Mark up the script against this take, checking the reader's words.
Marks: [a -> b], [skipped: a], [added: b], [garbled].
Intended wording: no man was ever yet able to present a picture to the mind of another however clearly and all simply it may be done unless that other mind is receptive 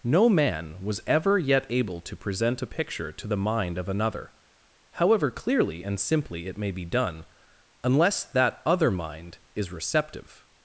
no man was ever yet able to present a picture to the mind of another however clearly and [skipped: all] simply it may be done unless that other mind is receptive